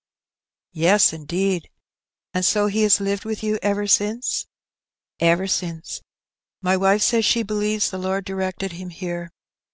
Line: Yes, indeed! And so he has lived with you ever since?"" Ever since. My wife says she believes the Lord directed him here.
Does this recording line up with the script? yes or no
yes